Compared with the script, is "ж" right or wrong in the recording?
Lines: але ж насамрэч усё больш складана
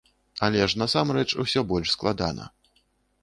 right